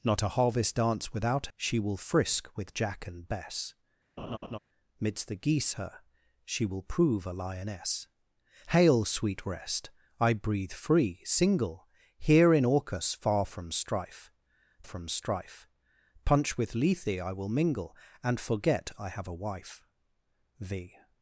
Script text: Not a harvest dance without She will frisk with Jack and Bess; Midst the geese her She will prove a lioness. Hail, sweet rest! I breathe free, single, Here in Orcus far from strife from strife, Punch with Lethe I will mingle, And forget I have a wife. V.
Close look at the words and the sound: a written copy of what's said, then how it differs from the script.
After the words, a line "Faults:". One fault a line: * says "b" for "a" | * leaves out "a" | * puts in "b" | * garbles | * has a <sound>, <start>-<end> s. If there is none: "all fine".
Not a harvest dance without She will frisk with Jack and Bess; Midst the geese her She will prove a lioness. Hail, sweet rest! I breathe free, single, Here in Orcus far from strife from strife, Punch with Lethe I will mingle, And forget I have a wife. V.
Faults:
* has a laugh, 4.2-4.6 s